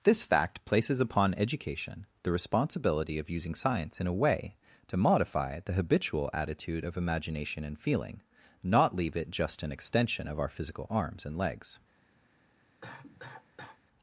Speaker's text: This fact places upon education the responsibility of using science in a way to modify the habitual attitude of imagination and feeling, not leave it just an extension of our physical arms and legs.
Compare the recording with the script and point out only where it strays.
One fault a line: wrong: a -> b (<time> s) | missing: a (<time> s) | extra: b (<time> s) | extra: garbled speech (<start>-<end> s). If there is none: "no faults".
no faults